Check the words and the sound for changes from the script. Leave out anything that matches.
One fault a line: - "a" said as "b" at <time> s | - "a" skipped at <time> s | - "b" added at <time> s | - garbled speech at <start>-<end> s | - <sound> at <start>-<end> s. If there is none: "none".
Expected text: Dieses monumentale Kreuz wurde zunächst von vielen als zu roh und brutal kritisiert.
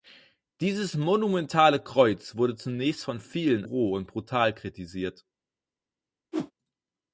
- "als zu" skipped at 3.7 s
- whoosh at 6.3-6.5 s